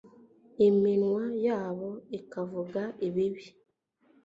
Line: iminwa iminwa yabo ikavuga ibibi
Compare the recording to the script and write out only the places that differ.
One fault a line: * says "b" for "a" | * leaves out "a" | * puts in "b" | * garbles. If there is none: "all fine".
* leaves out "iminwa"